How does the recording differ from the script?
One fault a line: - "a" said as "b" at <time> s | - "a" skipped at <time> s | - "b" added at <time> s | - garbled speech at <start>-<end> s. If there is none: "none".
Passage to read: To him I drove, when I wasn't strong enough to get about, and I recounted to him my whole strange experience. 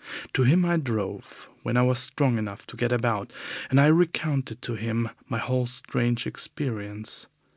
- "wasn't" said as "was" at 1.8 s